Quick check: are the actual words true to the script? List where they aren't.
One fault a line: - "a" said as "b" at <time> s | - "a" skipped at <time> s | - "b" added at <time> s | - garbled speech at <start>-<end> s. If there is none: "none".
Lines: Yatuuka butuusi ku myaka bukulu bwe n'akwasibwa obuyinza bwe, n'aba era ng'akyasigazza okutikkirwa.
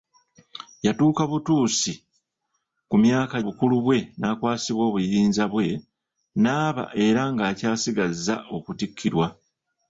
none